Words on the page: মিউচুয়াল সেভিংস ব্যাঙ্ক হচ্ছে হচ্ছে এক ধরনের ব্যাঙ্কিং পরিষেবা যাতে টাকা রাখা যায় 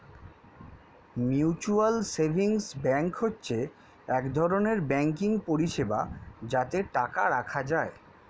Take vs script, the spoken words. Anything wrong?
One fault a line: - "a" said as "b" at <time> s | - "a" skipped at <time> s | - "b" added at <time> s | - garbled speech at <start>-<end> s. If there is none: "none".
- "হচ্ছে" skipped at 3.6 s